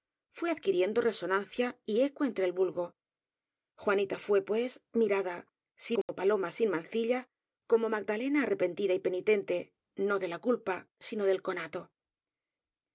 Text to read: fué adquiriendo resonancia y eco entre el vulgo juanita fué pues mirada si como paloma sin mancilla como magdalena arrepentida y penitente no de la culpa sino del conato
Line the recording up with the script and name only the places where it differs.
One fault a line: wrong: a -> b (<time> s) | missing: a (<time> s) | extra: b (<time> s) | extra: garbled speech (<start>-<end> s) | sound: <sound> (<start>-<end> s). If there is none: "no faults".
sound: dropout (6.0-6.1 s)